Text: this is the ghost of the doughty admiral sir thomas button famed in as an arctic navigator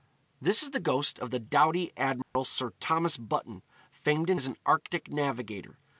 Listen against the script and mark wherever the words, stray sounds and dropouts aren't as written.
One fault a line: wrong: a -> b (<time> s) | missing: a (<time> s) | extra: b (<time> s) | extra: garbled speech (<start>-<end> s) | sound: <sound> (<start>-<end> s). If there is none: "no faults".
sound: dropout (2.2-2.4 s)